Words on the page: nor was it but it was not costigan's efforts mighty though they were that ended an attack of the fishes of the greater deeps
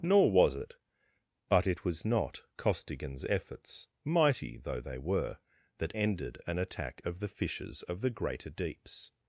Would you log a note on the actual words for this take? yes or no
no